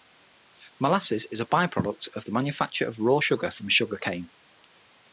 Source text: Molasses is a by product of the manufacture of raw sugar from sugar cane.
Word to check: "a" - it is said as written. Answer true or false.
true